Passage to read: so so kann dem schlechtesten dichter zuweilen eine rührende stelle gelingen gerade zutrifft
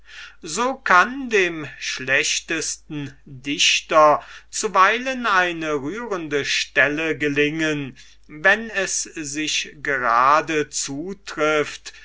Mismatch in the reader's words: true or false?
true